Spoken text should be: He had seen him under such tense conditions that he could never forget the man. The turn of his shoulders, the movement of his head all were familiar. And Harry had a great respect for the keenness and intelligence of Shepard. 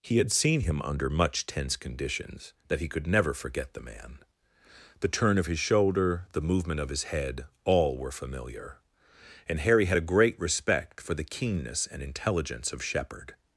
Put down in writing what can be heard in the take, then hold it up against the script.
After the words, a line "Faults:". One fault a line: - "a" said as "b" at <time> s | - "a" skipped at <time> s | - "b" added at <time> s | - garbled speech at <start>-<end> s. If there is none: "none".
He had seen him under much tense conditions that he could never forget the man. The turn of his shoulder, the movement of his head all were familiar. And Harry had a great respect for the keenness and intelligence of Shepard.
Faults:
- "such" said as "much" at 1.1 s
- "shoulders" said as "shoulder" at 5.6 s